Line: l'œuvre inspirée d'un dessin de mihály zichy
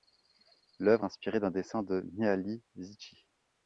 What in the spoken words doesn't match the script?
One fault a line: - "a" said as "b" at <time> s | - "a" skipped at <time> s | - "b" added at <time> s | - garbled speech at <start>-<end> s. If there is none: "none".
none